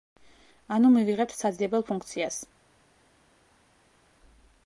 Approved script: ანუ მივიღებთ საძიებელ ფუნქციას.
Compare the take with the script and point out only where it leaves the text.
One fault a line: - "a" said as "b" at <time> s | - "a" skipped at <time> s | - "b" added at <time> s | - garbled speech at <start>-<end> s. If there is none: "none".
none